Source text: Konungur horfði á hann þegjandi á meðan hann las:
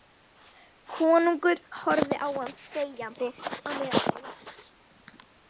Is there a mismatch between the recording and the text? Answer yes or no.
no